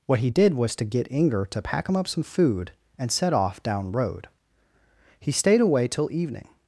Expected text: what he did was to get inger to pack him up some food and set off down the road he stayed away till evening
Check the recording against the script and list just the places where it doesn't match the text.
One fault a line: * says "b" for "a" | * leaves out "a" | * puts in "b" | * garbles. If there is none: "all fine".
* leaves out "the"